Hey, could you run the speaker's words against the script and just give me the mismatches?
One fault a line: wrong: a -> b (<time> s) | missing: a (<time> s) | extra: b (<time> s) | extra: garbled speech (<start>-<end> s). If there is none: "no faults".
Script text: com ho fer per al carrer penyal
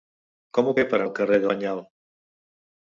no faults